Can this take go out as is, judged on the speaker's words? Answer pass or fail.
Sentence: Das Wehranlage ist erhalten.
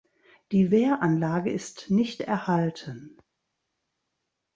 fail